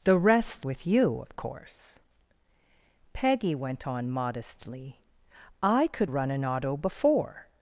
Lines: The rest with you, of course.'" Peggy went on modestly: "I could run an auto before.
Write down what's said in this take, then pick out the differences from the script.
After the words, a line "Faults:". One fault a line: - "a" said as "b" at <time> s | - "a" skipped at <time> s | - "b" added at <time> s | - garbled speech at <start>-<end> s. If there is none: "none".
The rest with you, of course.'" Peggy went on modestly: "I could run an auto before.
Faults:
none